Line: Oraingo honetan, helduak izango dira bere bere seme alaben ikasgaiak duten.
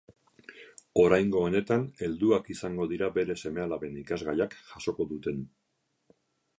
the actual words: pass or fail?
fail